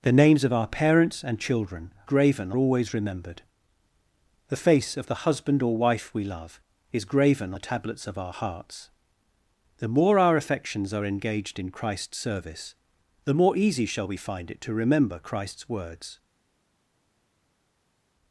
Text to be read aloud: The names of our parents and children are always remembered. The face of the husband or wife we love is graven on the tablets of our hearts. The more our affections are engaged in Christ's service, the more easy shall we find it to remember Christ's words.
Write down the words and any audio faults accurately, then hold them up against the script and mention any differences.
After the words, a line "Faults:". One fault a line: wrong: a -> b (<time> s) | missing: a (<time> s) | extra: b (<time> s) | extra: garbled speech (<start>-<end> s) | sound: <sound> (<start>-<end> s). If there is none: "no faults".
The names of our parents and children graven always remembered. The face of the husband or wife we love is graven the tablets of our hearts. The more our affections are engaged in Christ's service, the more easy shall we find it to remember Christ's words.
Faults:
wrong: are -> graven (2.0 s)
missing: on (7.5 s)